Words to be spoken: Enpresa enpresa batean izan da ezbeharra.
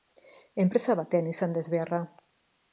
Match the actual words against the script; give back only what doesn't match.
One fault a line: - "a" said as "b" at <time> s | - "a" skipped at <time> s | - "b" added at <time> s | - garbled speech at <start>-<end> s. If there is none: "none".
- "enpresa" skipped at 0.9 s